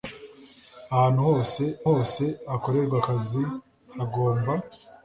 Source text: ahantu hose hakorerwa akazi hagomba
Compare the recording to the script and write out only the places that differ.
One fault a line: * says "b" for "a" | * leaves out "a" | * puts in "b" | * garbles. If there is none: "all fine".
* puts in "hose"